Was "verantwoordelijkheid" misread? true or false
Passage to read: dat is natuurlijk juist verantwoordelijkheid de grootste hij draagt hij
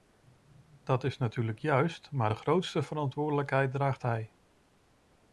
true